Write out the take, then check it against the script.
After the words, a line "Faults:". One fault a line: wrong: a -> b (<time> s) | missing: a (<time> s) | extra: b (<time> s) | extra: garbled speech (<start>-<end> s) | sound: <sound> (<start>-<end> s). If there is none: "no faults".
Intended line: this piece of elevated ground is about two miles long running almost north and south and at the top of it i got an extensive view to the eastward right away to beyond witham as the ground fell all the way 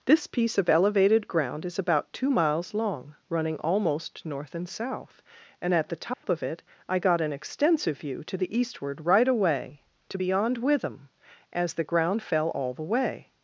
this piece of elevated ground is about two miles long running almost north and south and at the top of it i got an extensive view to the eastward right away to beyond witham as the ground fell all the way
Faults:
sound: dropout (6.1-6.2 s)